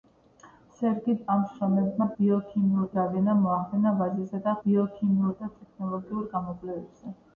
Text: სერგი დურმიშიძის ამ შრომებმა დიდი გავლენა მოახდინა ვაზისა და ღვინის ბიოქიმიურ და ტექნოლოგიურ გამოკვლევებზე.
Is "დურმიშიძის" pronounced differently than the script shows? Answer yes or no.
yes